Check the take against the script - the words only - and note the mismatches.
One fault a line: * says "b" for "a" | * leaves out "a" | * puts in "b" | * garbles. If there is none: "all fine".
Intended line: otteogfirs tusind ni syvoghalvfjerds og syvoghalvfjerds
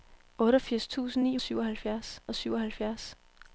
all fine